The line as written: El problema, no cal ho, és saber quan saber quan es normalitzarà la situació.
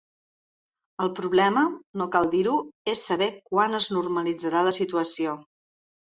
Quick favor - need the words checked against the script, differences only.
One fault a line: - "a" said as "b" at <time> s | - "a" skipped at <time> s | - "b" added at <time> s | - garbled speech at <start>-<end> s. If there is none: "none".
- "dir" added at 2.3 s
- "saber quan" skipped at 3.8 s